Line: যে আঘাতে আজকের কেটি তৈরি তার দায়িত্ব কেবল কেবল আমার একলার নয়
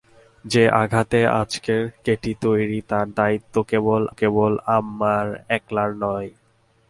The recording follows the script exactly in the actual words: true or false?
true